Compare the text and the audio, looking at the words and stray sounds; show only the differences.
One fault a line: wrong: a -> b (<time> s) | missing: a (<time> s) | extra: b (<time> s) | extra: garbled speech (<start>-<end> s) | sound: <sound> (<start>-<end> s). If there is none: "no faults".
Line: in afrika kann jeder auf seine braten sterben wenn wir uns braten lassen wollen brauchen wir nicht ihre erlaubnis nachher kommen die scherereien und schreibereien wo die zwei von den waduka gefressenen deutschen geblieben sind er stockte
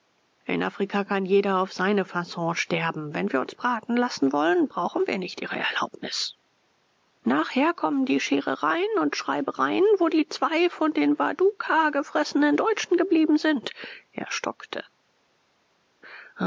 wrong: braten -> fasson (2.0 s)